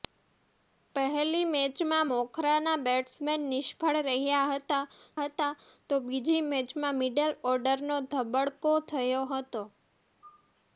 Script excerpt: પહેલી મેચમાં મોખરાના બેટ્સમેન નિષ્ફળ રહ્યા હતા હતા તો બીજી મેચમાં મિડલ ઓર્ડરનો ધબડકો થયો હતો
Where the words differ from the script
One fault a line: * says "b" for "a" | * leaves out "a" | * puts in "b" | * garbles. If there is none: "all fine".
all fine